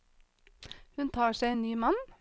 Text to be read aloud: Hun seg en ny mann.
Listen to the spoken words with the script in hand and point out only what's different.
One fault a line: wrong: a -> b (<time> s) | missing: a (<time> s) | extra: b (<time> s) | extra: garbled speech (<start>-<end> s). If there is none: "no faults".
extra: tar (1.1 s)